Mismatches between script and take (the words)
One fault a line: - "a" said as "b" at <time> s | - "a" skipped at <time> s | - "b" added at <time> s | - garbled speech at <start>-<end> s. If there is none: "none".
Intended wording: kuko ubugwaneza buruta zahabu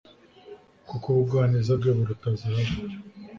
- "bwe" added at 1.8 s